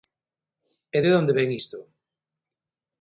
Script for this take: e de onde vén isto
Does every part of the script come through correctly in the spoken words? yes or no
yes